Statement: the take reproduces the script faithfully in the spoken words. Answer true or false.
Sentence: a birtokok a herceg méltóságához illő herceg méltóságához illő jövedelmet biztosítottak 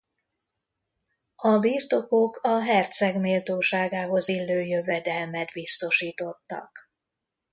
false